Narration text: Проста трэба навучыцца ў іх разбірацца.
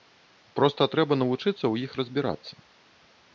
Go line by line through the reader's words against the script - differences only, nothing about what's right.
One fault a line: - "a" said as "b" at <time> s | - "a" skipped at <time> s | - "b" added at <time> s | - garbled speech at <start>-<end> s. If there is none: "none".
none